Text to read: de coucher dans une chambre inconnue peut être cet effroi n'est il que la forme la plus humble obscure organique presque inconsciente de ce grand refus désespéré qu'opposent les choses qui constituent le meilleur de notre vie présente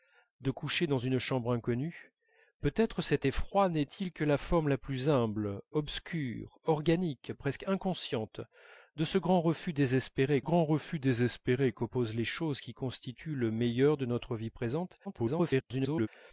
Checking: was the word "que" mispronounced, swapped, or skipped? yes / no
no